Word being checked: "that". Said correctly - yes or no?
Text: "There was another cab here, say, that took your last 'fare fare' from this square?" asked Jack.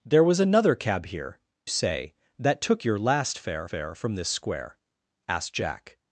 yes